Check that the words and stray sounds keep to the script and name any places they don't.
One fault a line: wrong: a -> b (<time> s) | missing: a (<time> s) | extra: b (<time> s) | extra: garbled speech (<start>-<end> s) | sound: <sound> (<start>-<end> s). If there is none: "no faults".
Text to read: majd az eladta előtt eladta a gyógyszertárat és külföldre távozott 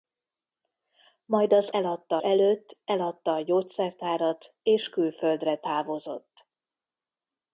no faults